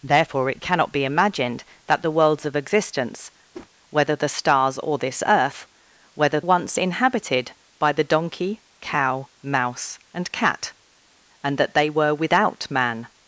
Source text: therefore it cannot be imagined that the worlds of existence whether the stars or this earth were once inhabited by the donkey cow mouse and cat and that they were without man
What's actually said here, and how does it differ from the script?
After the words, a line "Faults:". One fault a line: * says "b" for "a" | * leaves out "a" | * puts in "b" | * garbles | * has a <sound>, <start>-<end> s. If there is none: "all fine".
therefore it cannot be imagined that the worlds of existence whether the stars or this earth whether once inhabited by the donkey cow mouse and cat and that they were without man
Faults:
* has a whoosh, 3.5-3.7 s
* says "whether" for "were"